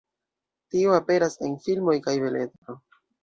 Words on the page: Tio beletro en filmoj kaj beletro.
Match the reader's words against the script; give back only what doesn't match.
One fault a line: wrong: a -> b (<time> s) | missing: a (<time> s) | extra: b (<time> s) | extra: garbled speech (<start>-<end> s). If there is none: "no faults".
wrong: beletro -> aperas (1.0 s)